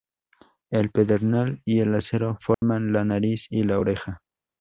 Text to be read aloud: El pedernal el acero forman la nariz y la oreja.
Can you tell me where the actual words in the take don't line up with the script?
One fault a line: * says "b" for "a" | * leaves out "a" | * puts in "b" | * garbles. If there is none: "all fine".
* puts in "y"